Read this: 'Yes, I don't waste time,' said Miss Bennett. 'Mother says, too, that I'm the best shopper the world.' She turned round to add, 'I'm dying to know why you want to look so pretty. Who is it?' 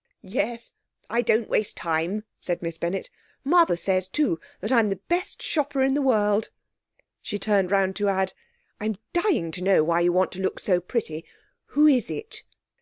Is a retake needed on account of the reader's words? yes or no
yes